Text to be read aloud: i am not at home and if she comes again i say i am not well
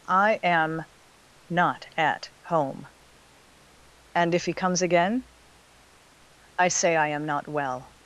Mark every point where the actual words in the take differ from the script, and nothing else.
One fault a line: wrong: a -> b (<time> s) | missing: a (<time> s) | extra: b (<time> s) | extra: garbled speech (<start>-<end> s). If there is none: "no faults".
wrong: she -> he (4.5 s)